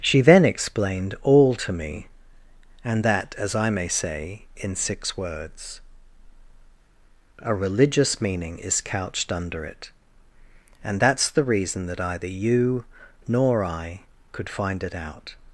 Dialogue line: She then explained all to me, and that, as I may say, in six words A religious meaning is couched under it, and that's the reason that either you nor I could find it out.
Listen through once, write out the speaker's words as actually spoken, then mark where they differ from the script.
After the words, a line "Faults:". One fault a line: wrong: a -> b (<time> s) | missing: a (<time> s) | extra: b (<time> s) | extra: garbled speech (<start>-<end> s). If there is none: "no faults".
She then explained all to me, and that, as I may say, in six words A religious meaning is couched under it, and that's the reason that either you nor I could find it out.
Faults:
no faults